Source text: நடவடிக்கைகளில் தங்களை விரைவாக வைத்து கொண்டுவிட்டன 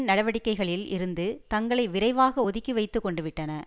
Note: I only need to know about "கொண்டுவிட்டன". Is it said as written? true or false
true